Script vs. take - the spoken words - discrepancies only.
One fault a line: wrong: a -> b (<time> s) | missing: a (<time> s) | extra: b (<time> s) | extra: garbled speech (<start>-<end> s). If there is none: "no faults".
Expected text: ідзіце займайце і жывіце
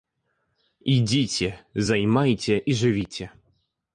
no faults